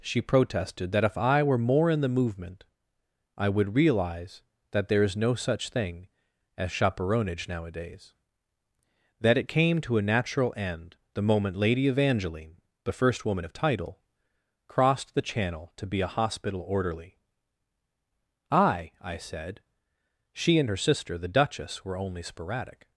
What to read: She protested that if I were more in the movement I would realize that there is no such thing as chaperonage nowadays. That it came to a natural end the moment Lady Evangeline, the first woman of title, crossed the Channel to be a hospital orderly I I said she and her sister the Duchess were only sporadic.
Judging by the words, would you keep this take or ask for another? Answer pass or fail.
pass